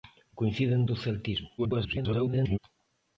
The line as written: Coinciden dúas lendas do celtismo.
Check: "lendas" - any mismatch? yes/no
yes